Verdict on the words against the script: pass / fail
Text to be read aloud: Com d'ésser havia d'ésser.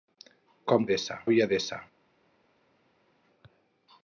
pass